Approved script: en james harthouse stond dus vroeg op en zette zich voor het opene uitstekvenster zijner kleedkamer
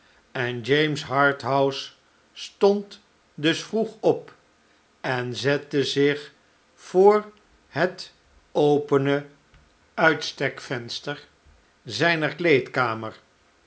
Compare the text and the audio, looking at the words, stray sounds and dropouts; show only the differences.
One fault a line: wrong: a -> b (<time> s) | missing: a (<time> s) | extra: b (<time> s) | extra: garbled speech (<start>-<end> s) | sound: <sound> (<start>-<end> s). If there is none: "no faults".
no faults